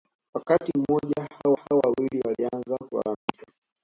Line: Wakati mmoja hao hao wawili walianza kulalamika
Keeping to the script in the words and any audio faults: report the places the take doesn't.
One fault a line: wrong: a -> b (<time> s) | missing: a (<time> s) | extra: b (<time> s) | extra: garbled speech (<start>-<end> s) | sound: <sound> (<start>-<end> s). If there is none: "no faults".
sound: dropout (3.1-3.3 s)